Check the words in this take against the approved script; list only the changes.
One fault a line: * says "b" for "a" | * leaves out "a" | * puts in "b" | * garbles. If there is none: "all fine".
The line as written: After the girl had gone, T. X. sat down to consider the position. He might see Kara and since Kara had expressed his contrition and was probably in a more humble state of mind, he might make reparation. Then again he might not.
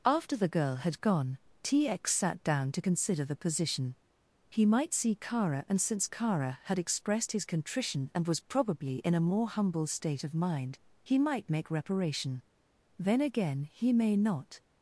* says "may" for "might"